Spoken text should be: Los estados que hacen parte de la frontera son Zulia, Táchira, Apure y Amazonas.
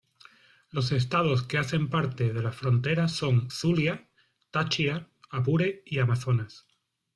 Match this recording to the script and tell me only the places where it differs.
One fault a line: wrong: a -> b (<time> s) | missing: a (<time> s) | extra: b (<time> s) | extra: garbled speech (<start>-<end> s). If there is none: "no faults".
no faults